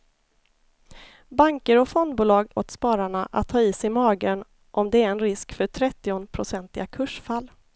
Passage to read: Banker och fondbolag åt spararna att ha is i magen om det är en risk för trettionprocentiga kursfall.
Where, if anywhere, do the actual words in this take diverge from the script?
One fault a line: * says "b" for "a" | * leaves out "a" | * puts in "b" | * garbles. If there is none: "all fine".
all fine